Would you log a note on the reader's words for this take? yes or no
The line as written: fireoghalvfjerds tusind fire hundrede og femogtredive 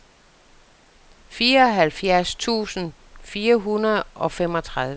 no